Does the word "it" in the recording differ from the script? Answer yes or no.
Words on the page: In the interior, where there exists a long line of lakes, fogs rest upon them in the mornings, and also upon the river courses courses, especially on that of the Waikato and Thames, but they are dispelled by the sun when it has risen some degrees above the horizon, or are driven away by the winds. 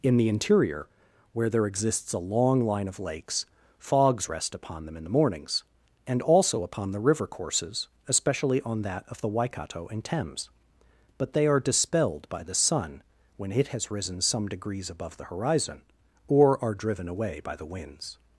no